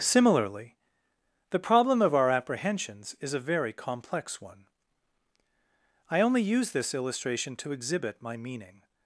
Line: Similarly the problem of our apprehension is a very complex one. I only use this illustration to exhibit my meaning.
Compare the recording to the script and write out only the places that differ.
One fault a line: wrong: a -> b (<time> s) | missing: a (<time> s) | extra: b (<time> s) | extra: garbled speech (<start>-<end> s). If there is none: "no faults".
wrong: apprehension -> apprehensions (2.3 s)